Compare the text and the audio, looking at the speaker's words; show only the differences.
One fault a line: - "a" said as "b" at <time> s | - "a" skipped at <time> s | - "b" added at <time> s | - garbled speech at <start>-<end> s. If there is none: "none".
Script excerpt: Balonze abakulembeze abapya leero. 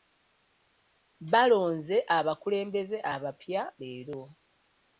none